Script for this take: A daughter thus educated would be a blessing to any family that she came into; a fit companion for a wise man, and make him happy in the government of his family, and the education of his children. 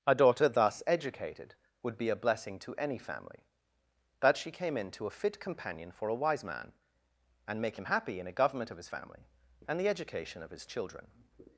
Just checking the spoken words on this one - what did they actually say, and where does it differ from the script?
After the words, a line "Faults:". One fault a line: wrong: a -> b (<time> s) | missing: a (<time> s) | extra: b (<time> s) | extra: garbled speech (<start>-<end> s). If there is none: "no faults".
A daughter thus educated would be a blessing to any family that she came into; a fit companion for a wise man, and make him happy in a government of his family, and the education of his children.
Faults:
wrong: the -> a (8.3 s)